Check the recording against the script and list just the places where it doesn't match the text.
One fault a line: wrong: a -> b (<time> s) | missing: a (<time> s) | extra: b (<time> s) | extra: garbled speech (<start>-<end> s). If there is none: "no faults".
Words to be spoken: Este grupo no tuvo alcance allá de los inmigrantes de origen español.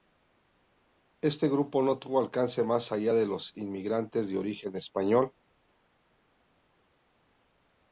extra: más (2.6 s)